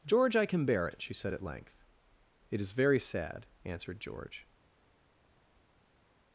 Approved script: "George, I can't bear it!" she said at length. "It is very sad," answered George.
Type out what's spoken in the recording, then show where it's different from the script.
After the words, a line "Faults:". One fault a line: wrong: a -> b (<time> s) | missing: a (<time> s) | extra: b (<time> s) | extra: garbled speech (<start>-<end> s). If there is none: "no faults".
"George, I can bear it!" she said at length. "It is very sad," answered George.
Faults:
wrong: can't -> can (0.5 s)